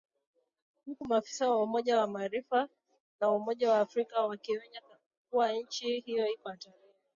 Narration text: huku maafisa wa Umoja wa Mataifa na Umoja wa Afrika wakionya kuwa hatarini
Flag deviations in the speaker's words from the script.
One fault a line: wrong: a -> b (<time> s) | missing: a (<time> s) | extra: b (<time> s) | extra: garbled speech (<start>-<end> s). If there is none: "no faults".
extra: nchi hiyo iko (5.5 s)